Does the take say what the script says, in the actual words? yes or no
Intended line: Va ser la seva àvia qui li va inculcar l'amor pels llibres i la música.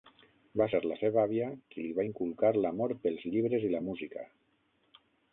yes